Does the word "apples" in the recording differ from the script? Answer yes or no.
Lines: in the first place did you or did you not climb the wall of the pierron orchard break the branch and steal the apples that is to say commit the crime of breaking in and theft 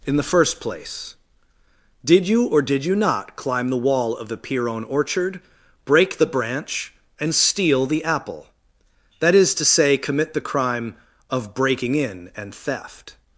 yes